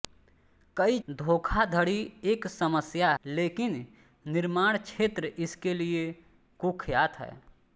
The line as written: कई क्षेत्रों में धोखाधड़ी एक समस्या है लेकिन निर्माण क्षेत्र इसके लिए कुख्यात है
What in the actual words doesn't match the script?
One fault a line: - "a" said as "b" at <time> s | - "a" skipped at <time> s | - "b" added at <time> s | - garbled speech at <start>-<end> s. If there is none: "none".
- "क्षेत्रों में" skipped at 1.0 s
- "है" skipped at 3.1 s